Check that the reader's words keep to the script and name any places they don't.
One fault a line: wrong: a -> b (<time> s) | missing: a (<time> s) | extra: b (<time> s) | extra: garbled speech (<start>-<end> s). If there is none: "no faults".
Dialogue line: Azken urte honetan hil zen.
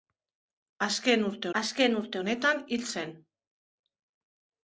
extra: azken urte (1.6 s)